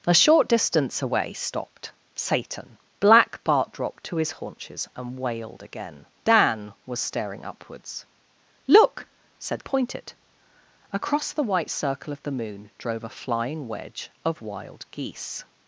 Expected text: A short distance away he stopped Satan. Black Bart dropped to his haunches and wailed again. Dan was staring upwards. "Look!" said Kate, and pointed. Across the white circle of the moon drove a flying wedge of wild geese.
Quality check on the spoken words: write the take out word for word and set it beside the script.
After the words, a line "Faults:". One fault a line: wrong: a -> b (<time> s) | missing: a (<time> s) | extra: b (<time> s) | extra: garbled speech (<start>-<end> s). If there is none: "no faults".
A short distance away stopped Satan. Black Bart dropped to his haunches and wailed again. Dan was staring upwards. "Look!" said Pointed. Across the white circle of the moon drove a flying wedge of wild geese.
Faults:
missing: he (1.3 s)
missing: Kate and (9.6 s)